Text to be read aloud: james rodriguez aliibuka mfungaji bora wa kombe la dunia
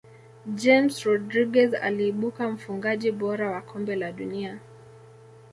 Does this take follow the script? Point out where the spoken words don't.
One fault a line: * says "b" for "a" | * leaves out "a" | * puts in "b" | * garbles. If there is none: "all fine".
all fine